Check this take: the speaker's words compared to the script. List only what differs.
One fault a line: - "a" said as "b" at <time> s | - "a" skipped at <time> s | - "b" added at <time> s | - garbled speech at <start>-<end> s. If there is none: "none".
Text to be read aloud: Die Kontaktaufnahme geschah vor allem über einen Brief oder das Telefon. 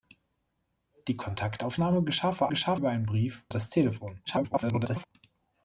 - "allem" said as "geschah" at 2.5 s
- "oder" skipped at 3.4 s
- garbled speech at 4.3-5.1 s